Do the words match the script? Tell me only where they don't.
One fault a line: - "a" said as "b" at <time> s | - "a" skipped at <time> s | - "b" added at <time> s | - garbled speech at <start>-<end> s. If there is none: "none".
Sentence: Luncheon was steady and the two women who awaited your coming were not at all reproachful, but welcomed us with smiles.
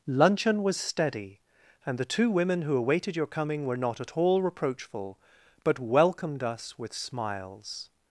none